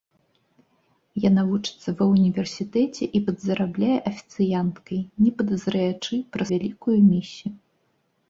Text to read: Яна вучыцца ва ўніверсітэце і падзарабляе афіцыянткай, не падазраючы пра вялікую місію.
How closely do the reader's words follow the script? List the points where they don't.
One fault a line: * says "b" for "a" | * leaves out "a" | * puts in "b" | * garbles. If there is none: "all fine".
all fine